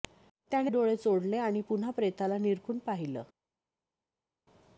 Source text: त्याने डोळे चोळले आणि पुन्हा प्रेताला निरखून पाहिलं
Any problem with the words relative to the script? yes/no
no